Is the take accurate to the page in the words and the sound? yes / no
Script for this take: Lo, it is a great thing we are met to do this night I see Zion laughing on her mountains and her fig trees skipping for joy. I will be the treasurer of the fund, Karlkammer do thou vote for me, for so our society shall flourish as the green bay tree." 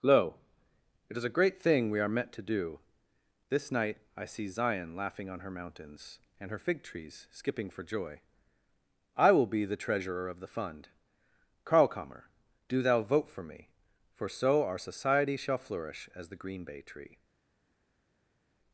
yes